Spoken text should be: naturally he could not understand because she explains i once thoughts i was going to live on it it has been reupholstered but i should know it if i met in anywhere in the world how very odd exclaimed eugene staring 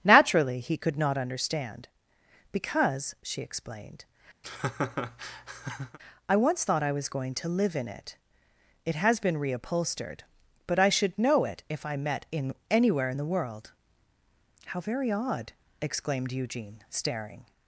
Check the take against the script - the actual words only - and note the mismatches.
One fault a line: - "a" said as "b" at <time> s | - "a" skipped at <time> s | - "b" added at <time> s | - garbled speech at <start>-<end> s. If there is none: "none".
- "explains" said as "explained" at 3.4 s
- "thoughts" said as "thought" at 6.6 s
- "on" said as "in" at 7.8 s